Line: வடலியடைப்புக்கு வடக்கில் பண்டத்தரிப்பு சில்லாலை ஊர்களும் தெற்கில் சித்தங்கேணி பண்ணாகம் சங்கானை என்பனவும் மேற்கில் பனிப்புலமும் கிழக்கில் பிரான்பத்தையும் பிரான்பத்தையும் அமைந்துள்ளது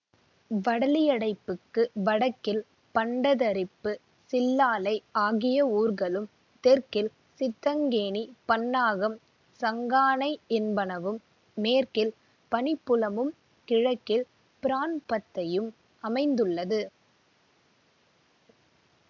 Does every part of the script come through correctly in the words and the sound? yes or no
no